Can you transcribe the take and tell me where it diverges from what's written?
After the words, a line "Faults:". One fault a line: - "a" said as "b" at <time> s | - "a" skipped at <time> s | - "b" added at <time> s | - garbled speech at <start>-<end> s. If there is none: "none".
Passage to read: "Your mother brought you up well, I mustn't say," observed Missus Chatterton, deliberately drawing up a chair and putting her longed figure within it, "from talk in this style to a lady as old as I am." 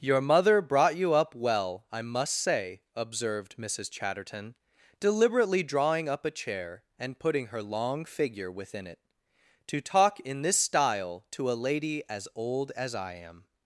"Your mother brought you up well, I must say," observed Missus Chatterton, deliberately drawing up a chair and putting her long figure within it, "to talk in this style to a lady as old as I am."
Faults:
- "mustn't" said as "must" at 2.0 s
- "longed" said as "long" at 7.6 s
- "from" said as "to" at 9.7 s